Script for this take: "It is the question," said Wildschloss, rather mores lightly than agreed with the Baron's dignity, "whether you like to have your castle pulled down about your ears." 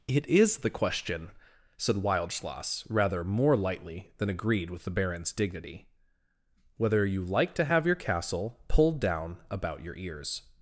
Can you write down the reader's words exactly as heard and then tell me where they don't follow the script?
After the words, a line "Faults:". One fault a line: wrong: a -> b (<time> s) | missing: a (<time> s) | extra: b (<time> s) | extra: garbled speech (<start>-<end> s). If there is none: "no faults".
"It is the question," said Wildschloss, rather more lightly than agreed with the Baron's dignity, "whether you like to have your castle pulled down about your ears."
Faults:
wrong: mores -> more (3.2 s)